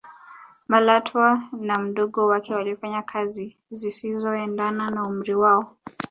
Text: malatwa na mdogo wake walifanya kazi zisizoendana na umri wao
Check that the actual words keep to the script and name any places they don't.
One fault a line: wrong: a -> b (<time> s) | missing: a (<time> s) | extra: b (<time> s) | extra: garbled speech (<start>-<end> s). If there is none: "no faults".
no faults